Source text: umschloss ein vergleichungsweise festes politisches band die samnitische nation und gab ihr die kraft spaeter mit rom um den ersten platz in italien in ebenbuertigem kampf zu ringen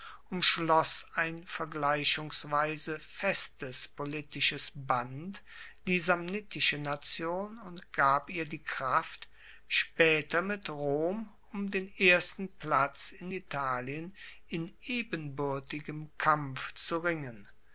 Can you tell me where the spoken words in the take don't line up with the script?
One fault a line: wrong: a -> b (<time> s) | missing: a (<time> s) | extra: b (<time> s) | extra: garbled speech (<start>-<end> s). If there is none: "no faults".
no faults